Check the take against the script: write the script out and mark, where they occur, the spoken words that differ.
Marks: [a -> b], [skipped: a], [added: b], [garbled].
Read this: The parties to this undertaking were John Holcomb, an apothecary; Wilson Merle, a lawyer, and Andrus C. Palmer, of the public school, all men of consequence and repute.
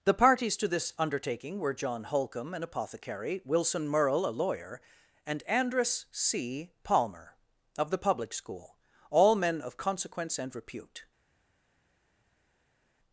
The parties to this undertaking were John Holcomb, an apothecary; Wilson Merle, a lawyer, and Andrus C. Palmer, of the public school, all men of consequence and repute.